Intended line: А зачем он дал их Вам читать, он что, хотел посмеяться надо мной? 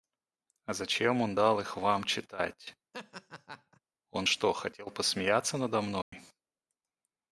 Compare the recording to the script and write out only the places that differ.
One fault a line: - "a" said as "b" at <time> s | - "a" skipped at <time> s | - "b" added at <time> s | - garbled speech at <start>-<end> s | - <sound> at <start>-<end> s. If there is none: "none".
- laugh at 2.9-3.8 s
- dropout at 6.0-6.1 s